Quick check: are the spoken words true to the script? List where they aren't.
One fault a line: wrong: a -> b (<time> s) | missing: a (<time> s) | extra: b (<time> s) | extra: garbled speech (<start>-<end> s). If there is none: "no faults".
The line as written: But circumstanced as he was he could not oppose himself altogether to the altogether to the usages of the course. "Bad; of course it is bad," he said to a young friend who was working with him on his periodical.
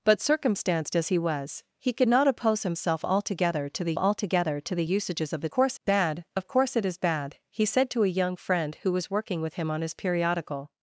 no faults